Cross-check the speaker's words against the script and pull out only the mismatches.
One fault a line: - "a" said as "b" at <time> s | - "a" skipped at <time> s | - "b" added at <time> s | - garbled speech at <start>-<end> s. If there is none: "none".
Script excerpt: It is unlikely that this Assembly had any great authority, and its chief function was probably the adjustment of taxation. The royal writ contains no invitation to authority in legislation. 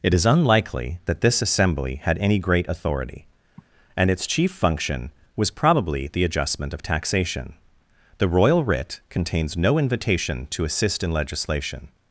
- "authority" said as "assist" at 10.6 s